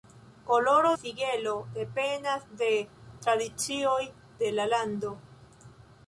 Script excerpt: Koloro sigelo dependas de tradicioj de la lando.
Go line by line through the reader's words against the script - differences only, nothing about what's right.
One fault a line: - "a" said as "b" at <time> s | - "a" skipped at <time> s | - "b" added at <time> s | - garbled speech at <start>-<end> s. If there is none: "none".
none